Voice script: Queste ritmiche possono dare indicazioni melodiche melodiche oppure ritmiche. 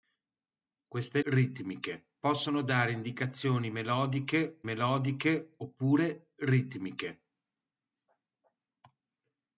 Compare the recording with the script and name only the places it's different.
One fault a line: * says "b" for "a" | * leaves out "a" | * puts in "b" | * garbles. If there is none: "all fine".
all fine